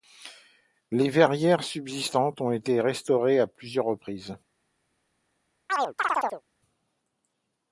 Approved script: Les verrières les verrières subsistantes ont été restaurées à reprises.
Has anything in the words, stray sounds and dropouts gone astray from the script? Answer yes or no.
yes